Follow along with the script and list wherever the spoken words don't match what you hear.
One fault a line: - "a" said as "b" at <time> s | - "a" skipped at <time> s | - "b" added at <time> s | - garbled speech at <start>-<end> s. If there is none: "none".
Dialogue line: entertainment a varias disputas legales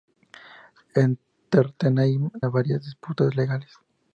none